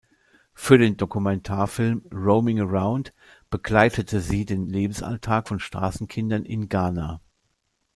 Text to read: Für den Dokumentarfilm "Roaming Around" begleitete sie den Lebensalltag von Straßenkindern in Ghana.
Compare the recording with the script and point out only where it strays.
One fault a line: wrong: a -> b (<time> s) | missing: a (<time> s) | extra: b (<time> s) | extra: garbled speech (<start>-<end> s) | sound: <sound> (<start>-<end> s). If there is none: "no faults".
no faults